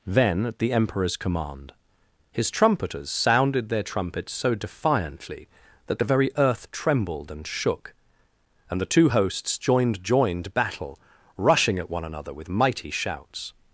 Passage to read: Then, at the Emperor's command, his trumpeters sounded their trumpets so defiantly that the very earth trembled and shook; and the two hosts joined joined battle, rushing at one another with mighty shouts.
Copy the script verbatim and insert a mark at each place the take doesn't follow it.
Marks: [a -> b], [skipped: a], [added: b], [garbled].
Then, at the Emperor's command, his trumpeters sounded their trumpets so defiantly that the very earth trembled and shook; and the two hosts joined joined battle, rushing at one another with mighty shouts.